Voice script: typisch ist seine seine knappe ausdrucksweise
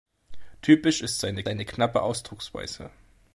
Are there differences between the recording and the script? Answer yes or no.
no